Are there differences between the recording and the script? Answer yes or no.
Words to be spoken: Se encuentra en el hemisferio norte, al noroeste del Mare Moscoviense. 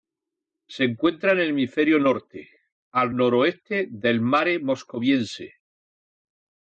no